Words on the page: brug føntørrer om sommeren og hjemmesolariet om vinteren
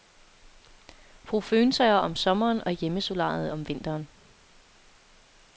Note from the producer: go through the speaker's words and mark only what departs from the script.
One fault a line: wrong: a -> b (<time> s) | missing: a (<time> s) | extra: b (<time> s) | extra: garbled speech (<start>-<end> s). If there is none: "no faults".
no faults